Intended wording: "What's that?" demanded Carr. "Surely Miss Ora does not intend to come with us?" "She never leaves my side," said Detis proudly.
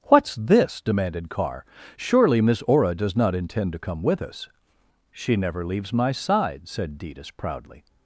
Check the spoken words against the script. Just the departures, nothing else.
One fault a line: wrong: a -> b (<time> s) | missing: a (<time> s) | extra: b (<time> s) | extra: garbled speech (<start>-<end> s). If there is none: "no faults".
wrong: that -> this (0.3 s)